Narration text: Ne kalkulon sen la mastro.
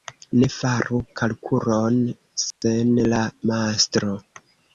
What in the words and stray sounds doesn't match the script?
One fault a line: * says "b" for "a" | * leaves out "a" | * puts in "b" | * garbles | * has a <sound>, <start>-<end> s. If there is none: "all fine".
* puts in "faru"
* has a dropout, 2.5-2.6 s